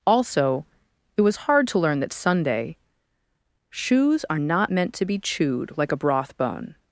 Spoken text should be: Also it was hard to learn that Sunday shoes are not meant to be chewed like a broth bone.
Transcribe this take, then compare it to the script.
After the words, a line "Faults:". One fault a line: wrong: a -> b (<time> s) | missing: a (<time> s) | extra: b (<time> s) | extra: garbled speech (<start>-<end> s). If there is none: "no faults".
Also it was hard to learn that Sunday shoes are not meant to be chewed like a broth bone.
Faults:
no faults